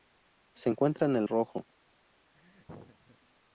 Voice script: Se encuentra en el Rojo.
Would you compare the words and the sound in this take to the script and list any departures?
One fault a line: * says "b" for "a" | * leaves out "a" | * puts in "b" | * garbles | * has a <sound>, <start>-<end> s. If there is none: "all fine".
* has a laugh, 2.3-3.2 s